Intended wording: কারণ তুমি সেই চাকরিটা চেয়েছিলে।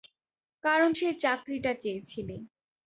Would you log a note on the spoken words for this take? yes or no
yes